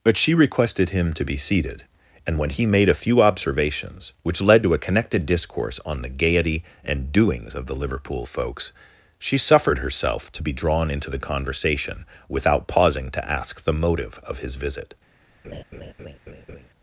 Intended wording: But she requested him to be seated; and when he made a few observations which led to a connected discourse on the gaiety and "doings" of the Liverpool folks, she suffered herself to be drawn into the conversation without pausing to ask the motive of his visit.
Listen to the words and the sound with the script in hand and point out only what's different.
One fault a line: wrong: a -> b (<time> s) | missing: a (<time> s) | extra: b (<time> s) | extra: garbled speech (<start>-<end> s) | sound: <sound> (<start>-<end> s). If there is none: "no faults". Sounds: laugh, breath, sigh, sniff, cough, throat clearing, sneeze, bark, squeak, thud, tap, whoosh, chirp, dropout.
sound: laugh (15.4-16.7 s)